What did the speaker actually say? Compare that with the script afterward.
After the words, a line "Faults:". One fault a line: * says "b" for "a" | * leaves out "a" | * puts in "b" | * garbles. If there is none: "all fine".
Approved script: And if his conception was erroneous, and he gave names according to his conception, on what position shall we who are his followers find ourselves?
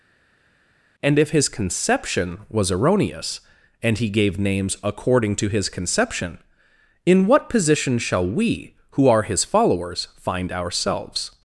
And if his conception was erroneous, and he gave names according to his conception, in what position shall we who are his followers find ourselves?
Faults:
* says "in" for "on"